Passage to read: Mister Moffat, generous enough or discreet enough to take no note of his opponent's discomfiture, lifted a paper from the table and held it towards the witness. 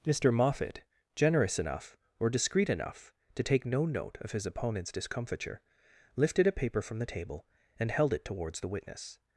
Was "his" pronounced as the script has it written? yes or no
yes